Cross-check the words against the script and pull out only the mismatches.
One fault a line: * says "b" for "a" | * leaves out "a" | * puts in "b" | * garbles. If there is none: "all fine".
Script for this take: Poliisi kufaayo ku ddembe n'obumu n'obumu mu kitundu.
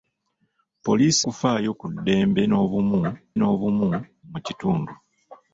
all fine